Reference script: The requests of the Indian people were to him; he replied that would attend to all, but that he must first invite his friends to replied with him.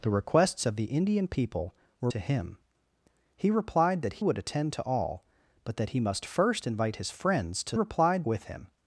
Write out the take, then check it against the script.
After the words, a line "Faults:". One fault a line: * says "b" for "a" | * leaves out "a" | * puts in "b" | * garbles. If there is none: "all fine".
The requests of the Indian people were to him; he replied that would attend to all, but that he must first invite his friends to replied with him.
Faults:
all fine